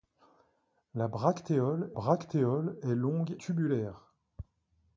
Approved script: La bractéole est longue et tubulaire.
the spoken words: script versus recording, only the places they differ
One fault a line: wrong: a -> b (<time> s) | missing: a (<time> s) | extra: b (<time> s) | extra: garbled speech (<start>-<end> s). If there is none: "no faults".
extra: bractéole (1.9 s)
missing: et (3.4 s)